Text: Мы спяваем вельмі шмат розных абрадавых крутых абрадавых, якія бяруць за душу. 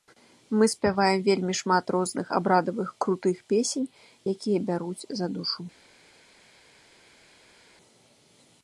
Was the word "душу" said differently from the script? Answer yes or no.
no